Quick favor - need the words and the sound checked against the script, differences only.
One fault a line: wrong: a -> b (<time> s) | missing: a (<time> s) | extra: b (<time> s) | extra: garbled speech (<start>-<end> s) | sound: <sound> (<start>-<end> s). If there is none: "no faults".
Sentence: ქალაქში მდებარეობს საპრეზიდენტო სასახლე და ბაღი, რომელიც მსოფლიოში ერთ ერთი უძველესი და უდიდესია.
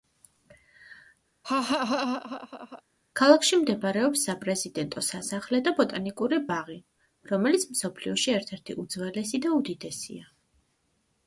sound: laugh (1.4-2.8 s)
extra: ბოტანიკური (5.8 s)